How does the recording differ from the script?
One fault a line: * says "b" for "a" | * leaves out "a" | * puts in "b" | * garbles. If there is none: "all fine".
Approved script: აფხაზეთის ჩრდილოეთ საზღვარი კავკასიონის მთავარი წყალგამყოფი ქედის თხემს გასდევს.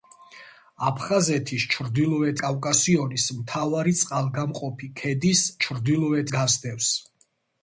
* leaves out "საზღვარი"
* says "ჩრდილოეთ" for "თხემს"